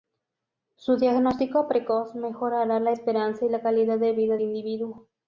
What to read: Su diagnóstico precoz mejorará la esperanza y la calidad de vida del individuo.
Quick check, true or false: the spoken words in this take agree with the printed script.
false